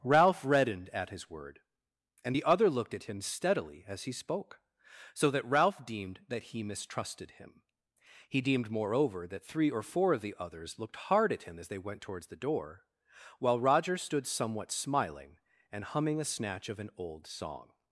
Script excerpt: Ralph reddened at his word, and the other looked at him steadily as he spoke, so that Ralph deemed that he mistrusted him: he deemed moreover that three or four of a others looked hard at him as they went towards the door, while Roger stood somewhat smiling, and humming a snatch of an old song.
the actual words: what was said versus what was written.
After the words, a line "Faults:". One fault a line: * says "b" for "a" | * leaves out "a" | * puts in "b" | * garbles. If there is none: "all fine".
Ralph reddened at his word, and the other looked at him steadily as he spoke, so that Ralph deemed that he mistrusted him: he deemed moreover that three or four of the others looked hard at him as they went towards the door, while Roger stood somewhat smiling, and humming a snatch of an old song.
Faults:
* says "the" for "a"